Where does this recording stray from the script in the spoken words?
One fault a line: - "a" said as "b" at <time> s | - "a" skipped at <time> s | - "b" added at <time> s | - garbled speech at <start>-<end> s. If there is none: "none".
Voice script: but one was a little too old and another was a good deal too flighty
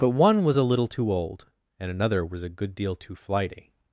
none